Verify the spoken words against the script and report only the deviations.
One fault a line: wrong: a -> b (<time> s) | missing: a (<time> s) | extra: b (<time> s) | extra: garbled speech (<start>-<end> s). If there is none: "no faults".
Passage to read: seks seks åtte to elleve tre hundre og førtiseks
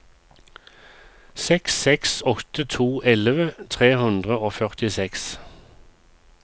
no faults